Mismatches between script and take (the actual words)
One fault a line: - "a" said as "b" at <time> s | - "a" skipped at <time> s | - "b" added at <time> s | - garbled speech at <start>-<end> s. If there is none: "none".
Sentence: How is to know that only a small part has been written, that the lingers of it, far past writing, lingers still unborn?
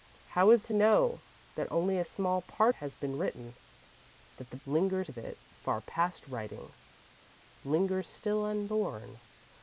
none